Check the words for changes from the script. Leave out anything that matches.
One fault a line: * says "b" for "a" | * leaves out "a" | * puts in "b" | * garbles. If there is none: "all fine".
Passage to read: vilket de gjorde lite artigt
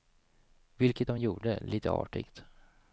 all fine